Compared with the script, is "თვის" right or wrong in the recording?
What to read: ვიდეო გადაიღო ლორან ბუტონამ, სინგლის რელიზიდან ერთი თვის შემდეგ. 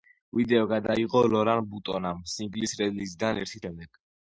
wrong